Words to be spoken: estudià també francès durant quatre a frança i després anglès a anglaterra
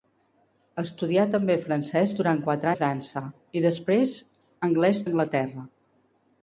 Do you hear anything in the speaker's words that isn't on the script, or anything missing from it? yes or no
no